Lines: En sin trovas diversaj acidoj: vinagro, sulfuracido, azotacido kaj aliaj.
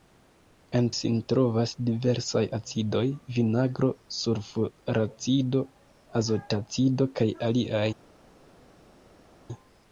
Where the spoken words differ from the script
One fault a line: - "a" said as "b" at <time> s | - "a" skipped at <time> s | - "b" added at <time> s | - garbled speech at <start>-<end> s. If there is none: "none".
none